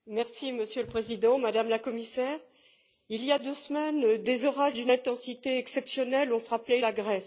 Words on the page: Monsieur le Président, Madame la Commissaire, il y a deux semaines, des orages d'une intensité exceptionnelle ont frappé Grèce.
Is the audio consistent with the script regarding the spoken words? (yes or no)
no